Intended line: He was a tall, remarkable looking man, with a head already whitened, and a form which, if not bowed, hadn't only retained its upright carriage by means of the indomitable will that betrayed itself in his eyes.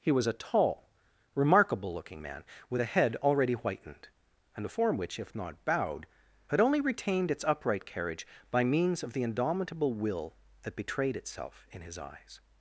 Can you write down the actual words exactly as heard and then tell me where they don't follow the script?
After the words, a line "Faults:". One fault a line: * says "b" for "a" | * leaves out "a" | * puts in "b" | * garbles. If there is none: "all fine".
He was a tall, remarkable looking man, with a head already whitened, and a form which, if not bowed, had only retained its upright carriage by means of the indomitable will that betrayed itself in his eyes.
Faults:
* says "had" for "hadn't"